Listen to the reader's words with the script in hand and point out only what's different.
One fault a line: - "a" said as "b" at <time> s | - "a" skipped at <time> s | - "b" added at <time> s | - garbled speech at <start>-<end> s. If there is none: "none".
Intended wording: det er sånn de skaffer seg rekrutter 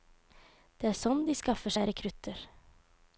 none